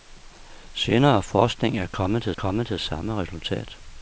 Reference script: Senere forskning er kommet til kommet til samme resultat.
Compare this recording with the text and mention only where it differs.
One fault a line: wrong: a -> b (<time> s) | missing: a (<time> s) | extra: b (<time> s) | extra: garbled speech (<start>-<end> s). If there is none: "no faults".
no faults